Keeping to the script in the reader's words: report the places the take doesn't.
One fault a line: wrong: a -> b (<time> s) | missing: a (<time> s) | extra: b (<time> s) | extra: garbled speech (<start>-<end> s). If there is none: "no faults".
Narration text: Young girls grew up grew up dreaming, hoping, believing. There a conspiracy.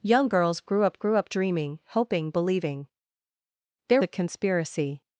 no faults